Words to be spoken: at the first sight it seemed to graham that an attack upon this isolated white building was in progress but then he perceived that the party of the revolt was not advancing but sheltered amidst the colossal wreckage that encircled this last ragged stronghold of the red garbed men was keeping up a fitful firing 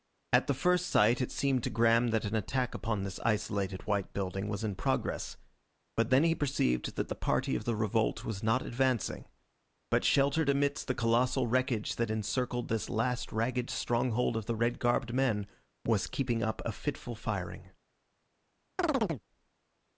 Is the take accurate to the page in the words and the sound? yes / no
no